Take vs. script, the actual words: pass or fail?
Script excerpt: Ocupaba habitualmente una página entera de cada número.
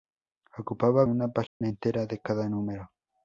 fail